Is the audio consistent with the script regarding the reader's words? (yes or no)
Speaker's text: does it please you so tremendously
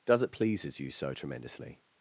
no